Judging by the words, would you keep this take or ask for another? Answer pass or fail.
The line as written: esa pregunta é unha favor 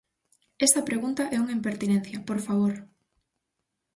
fail